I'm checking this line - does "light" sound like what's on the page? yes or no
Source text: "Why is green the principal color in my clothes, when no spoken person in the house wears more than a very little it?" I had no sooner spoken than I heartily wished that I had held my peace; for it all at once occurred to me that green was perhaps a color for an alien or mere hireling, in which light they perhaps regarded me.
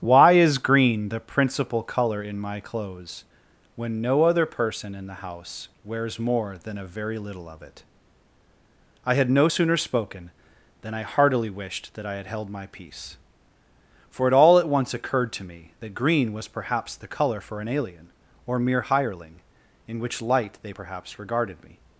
yes